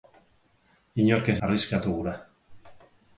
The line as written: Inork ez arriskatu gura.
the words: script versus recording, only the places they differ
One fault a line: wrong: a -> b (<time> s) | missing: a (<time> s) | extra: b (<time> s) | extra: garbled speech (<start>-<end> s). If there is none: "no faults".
no faults